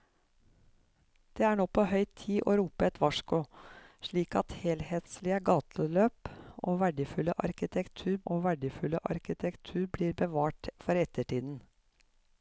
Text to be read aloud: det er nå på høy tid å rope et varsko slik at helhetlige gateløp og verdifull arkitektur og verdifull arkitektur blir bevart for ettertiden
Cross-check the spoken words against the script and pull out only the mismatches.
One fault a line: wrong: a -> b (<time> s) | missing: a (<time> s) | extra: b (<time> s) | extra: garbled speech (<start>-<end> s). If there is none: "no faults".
no faults